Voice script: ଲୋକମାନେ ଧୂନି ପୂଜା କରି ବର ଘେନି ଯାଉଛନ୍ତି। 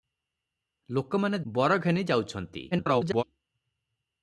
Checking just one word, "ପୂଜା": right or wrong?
wrong